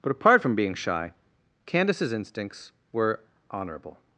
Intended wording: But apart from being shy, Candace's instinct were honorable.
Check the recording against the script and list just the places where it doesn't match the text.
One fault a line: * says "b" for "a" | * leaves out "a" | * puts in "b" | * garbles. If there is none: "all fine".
* says "instincts" for "instinct"